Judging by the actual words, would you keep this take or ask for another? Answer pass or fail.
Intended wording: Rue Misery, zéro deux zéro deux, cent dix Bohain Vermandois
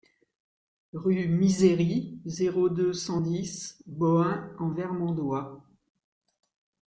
fail